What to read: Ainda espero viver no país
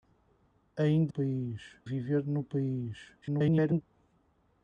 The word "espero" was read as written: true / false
false